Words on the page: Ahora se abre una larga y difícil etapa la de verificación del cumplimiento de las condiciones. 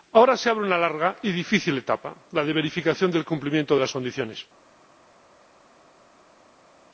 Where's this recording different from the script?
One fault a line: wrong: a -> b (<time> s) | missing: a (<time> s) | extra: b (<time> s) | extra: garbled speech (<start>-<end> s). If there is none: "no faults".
no faults